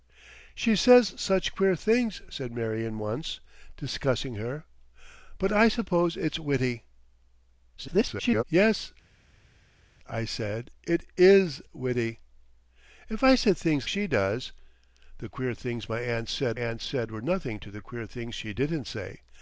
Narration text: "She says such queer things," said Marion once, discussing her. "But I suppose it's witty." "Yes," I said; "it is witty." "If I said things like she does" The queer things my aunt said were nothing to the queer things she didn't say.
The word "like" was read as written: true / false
false